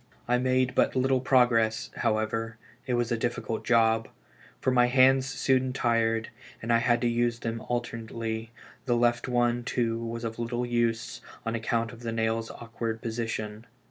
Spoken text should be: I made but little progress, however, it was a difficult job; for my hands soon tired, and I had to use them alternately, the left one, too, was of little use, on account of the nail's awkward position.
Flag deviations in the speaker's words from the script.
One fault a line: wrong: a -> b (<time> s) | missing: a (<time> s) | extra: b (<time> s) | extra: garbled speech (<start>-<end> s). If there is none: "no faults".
no faults